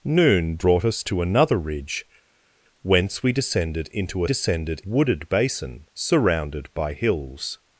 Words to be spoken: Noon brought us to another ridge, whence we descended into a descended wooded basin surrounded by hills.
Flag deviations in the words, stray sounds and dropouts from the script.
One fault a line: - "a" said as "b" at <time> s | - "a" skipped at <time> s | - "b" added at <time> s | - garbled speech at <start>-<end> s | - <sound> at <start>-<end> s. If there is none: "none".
none